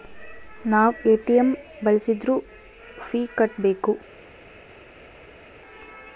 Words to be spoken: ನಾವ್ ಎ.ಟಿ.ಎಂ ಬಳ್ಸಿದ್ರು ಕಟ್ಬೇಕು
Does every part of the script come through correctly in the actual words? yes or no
no